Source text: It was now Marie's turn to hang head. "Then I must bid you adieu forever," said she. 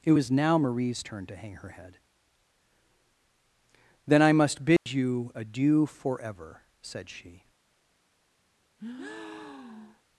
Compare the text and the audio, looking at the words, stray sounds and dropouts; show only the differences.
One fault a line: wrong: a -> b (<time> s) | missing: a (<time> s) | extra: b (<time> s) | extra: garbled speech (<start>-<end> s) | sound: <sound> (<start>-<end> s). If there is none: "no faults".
extra: her (1.6 s)
sound: dropout (4.8-4.9 s)
sound: breath (8.8-10.0 s)